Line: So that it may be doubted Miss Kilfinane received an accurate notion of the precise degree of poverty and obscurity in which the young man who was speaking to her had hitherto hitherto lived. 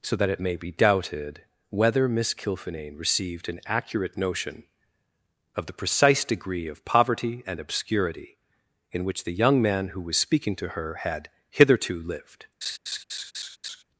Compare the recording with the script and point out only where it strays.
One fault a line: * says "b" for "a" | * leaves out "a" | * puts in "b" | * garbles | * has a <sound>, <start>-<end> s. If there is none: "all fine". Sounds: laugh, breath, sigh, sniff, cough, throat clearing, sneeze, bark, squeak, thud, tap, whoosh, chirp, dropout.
* puts in "whether"
* leaves out "hitherto"
* has a laugh, 12.6-13.8 s